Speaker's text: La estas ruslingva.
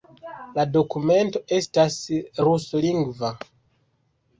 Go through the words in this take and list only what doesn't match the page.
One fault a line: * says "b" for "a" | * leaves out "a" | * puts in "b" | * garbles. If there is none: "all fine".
* puts in "dokumento"